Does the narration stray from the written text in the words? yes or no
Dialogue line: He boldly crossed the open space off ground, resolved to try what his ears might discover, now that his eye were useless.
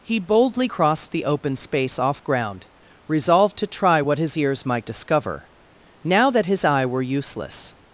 no